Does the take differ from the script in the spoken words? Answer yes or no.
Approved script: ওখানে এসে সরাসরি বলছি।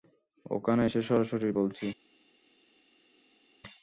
no